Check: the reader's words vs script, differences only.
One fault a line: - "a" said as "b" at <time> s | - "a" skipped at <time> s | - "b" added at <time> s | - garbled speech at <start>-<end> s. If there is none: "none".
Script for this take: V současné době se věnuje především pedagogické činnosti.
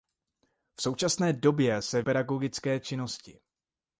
- "věnuje především" skipped at 2.0 s